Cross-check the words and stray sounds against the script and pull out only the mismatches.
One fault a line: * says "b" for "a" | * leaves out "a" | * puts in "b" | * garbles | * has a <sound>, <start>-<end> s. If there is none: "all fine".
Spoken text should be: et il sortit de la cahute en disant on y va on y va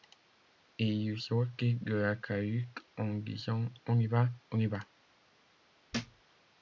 * has a thud, 5.9-6.2 s